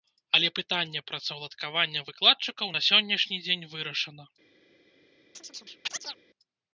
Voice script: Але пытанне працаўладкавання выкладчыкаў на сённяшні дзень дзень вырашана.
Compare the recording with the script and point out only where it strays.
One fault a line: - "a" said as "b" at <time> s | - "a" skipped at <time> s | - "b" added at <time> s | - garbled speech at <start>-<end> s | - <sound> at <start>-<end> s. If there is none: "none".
- "дзень" skipped at 3.7 s
- chirp at 5.3-6.2 s